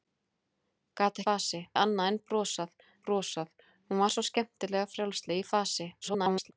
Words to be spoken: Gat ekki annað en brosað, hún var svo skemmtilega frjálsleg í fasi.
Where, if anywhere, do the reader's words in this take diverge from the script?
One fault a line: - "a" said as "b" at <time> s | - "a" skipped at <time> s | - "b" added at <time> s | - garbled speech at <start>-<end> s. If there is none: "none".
- "ekki" said as "fasi" at 1.3 s
- "brosað" added at 3.1 s
- garbled speech at 6.0-6.5 s